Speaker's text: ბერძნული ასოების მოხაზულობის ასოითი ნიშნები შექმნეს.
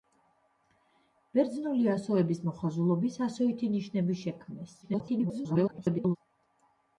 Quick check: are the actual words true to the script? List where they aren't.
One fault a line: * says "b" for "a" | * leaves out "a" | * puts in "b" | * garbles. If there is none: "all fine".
* garbles